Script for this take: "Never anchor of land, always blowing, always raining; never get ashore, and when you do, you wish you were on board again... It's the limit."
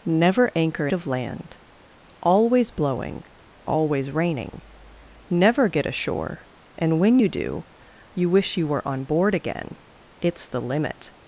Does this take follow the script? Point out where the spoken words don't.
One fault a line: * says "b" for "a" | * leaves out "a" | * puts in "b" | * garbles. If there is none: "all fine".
all fine